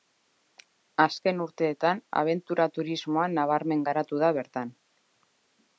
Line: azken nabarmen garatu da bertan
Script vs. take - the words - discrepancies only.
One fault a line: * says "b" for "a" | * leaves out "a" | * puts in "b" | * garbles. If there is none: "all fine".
* puts in "urteetan abentura turismoa"